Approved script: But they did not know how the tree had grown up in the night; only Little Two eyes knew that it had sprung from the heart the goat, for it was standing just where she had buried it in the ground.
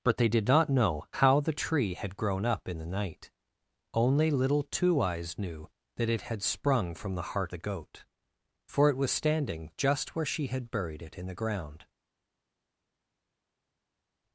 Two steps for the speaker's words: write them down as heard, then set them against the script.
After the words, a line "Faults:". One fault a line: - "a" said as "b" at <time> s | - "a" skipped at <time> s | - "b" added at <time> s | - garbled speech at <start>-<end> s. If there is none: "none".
But they did not know how the tree had grown up in the night; only Little Two eyes knew that it had sprung from the heart the goat, for it was standing just where she had buried it in the ground.
Faults:
none